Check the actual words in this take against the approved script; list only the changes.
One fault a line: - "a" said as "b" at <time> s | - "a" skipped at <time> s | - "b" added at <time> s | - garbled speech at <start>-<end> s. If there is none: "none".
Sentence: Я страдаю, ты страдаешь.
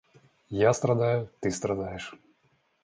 none